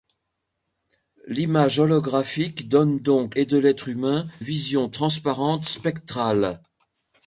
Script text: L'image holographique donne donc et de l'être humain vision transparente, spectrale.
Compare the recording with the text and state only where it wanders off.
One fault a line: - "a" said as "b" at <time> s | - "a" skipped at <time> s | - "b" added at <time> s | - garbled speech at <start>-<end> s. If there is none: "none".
none